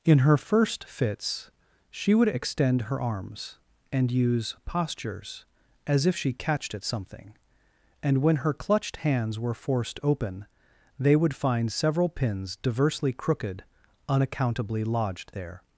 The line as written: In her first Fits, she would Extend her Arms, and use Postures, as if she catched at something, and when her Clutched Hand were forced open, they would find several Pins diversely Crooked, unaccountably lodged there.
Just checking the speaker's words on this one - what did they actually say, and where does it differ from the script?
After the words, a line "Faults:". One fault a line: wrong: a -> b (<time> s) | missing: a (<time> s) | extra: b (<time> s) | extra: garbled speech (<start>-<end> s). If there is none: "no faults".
In her first Fits, she would Extend her Arms, and use Postures, as if she catched at something, and when her Clutched Hands were forced open, they would find several Pins diversely Crooked, unaccountably lodged there.
Faults:
wrong: Hand -> Hands (9.0 s)